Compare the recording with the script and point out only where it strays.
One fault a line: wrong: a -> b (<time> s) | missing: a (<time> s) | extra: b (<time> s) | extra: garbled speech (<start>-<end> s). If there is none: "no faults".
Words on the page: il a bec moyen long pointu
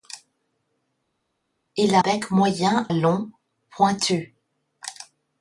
no faults